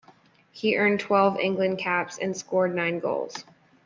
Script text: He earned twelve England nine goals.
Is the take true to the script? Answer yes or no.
no